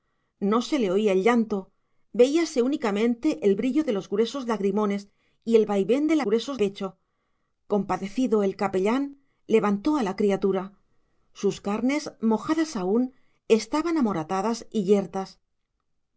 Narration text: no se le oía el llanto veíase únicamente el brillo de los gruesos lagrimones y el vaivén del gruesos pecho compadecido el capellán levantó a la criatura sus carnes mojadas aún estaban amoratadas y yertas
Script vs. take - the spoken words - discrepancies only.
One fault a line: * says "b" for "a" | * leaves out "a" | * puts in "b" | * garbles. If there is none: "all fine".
all fine